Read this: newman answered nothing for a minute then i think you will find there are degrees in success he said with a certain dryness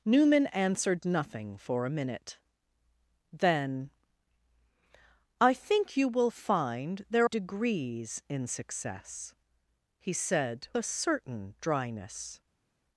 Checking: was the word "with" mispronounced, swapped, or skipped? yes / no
yes